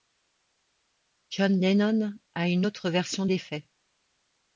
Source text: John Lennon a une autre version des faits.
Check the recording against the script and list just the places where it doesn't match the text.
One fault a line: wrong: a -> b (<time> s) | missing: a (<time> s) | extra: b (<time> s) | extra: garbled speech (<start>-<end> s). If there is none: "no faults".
no faults